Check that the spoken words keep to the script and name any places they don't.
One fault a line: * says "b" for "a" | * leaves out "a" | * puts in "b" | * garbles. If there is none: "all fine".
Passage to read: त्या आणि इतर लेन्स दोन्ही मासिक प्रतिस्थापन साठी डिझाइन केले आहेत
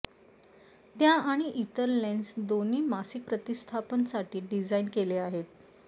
all fine